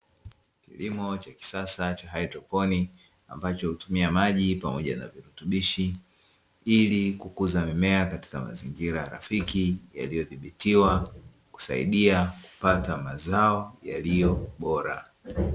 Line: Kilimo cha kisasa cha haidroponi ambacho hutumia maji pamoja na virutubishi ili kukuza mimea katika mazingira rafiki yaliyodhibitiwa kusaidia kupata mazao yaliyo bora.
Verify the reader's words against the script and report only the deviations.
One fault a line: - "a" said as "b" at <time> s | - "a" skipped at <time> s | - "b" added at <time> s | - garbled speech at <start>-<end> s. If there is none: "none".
none